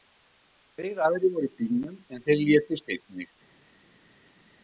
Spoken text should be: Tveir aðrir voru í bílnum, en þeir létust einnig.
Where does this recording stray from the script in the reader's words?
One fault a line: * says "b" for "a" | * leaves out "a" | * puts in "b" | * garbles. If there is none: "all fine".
all fine